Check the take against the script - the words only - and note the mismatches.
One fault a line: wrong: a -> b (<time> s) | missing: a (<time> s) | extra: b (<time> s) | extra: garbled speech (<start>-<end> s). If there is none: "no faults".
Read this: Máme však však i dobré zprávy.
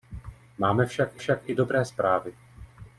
no faults